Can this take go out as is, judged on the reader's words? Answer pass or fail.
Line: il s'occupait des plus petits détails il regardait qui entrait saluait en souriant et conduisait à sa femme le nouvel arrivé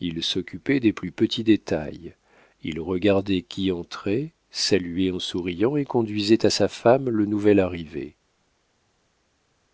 pass